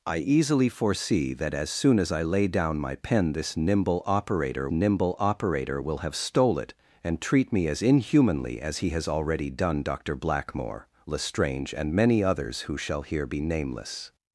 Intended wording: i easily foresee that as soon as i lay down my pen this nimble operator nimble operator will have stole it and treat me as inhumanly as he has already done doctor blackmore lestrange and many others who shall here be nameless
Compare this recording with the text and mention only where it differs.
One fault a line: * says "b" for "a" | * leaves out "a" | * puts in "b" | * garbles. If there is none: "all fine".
all fine